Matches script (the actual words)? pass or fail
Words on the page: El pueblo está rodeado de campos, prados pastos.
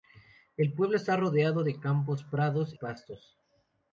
pass